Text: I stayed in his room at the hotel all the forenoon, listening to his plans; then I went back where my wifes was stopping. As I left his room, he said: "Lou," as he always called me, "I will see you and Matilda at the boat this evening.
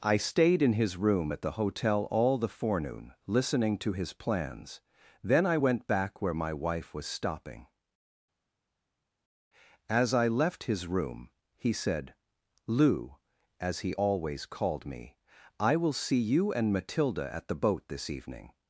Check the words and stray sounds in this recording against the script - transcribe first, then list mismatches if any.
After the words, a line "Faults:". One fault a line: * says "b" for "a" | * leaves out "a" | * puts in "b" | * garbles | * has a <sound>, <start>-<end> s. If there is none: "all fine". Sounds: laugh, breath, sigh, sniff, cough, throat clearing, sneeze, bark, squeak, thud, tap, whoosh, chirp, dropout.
I stayed in his room at the hotel all the forenoon, listening to his plans; then I went back where my wife was stopping. As I left his room, he said: "Lou," as he always called me, "I will see you and Matilda at the boat this evening.
Faults:
* says "wife" for "wifes"